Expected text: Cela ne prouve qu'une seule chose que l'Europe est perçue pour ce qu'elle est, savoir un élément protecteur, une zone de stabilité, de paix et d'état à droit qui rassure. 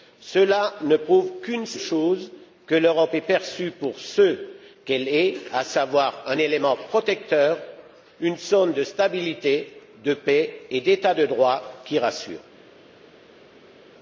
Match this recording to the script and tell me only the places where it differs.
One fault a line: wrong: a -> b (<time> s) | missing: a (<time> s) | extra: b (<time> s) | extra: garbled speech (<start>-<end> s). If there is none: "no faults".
extra: à (5.5 s)
wrong: à -> de (11.1 s)